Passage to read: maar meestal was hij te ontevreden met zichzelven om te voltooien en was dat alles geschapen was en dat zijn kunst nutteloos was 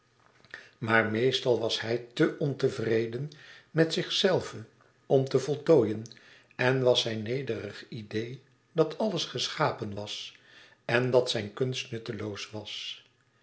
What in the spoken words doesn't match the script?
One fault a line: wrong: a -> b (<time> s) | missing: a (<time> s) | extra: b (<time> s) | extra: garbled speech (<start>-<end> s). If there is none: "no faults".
extra: zijn nederig idee (7.0 s)